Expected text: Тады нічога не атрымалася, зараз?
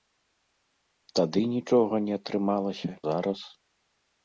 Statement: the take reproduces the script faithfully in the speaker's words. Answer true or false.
true